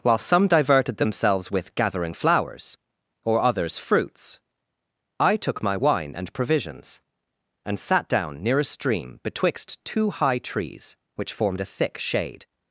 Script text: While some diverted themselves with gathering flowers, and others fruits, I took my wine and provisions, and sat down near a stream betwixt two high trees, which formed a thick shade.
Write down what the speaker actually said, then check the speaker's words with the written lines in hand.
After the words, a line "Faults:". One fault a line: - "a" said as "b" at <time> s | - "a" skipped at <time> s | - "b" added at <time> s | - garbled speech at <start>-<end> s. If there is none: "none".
While some diverted themselves with gathering flowers, or others fruits, I took my wine and provisions, and sat down near a stream betwixt two high trees, which formed a thick shade.
Faults:
- "and" said as "or" at 3.2 s